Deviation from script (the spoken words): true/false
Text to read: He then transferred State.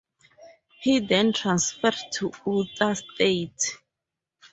true